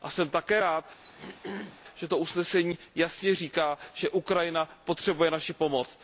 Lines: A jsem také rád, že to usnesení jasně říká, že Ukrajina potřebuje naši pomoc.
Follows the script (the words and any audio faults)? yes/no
no